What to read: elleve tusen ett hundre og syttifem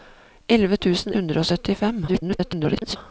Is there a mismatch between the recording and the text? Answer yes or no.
yes